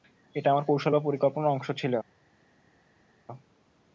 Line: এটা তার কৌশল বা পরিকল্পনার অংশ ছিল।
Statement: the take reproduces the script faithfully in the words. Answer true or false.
false